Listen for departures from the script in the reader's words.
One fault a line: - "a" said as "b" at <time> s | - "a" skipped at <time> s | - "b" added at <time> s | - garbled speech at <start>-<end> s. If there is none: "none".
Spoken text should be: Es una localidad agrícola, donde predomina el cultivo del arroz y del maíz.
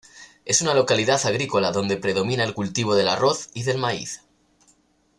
none